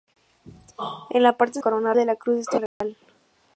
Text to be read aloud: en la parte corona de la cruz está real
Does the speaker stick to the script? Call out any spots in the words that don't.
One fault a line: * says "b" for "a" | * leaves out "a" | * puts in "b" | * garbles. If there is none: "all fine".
all fine